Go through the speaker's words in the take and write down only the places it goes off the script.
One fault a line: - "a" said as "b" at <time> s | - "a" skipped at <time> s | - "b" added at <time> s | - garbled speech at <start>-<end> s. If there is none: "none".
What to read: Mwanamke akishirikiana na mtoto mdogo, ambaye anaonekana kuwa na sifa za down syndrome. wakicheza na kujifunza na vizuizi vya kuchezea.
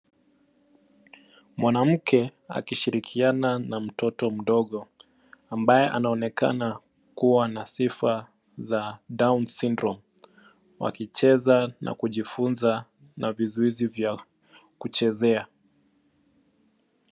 none